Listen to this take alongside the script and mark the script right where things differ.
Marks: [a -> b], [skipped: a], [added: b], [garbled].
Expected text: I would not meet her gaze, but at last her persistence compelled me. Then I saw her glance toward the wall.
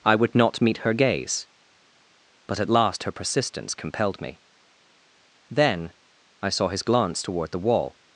I would not meet her gaze, but at last her persistence compelled me. Then I saw [her -> his] glance toward the wall.